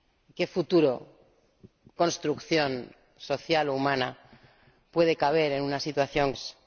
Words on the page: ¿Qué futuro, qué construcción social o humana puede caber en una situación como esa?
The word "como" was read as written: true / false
false